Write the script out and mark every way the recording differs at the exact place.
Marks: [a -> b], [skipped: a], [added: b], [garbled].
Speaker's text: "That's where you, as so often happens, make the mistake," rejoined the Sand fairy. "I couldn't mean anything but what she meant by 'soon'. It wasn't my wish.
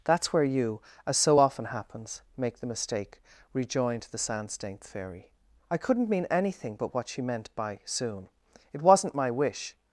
"That's where you, as so often happens, make the mistake," rejoined the Sand [added: stained] fairy. "I couldn't mean anything but what she meant by 'soon'. It wasn't my wish.